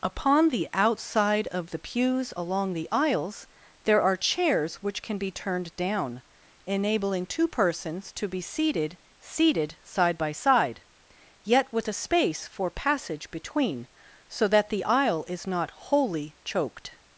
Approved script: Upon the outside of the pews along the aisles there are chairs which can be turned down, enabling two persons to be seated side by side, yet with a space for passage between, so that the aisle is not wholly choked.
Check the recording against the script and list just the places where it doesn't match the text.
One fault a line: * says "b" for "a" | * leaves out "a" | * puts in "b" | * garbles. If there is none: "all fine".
* puts in "seated"